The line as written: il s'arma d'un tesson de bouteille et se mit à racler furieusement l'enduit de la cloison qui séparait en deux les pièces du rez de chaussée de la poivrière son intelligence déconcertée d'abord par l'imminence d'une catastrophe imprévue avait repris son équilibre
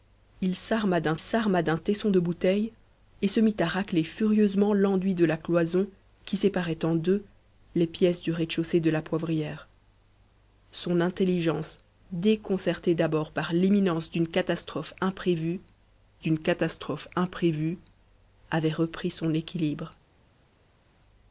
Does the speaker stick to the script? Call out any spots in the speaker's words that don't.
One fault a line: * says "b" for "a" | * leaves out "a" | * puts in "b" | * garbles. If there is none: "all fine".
* puts in "s'arma d'un"
* puts in "d'une catastrophe imprévue"